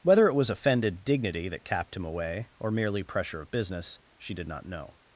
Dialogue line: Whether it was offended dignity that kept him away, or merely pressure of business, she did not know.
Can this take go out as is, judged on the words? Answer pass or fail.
fail